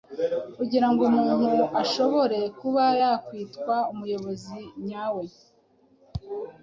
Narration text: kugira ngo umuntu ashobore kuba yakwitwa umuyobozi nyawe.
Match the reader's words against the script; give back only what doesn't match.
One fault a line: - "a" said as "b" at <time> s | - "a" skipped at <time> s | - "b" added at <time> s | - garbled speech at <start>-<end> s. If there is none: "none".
none